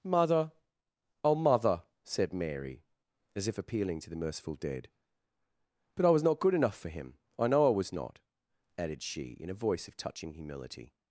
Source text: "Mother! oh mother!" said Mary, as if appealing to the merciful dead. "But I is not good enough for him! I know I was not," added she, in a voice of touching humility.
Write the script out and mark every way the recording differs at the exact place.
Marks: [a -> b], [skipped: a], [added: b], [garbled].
"Mother! oh mother!" said Mary, as if appealing to the merciful dead. "But I [is -> was] not good enough for him! I know I was not," added she, in a voice of touching humility.